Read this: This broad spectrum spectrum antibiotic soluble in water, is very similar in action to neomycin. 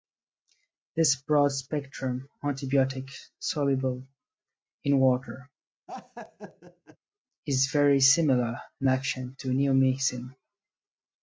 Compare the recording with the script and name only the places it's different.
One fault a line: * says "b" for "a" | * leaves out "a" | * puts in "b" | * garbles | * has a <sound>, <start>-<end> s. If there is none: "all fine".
* leaves out "spectrum"
* has a laugh, 5.9-7.0 s